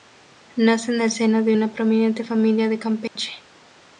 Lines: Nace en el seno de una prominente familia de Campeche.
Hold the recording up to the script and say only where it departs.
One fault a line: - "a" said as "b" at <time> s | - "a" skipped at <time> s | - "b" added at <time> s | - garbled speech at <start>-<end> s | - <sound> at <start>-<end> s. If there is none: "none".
- dropout at 3.1-3.2 s